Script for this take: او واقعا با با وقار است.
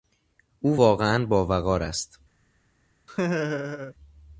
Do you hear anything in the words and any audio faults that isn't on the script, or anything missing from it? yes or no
yes